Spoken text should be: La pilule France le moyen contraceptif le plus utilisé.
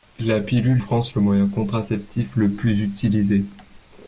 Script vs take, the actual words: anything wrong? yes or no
no